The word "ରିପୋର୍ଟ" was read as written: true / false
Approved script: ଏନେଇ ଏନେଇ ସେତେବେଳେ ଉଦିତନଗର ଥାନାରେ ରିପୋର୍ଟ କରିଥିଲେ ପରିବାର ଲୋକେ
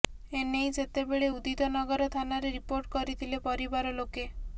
true